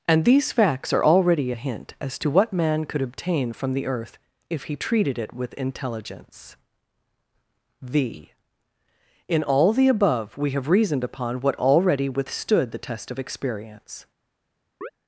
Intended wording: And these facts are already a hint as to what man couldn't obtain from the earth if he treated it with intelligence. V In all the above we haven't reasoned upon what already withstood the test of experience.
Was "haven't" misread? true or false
true